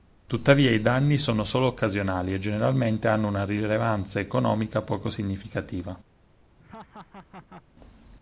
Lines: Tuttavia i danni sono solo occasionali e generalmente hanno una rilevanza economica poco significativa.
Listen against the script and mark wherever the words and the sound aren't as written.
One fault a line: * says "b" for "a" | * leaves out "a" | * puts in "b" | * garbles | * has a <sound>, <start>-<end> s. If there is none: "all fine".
* has a laugh, 6.6-7.6 s